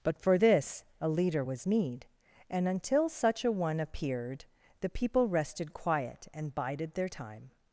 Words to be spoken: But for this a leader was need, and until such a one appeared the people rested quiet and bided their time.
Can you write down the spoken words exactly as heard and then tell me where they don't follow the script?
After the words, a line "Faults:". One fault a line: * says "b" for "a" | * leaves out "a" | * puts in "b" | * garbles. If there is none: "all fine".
But for this a leader was need, and until such a one appeared the people rested quiet and bided their time.
Faults:
all fine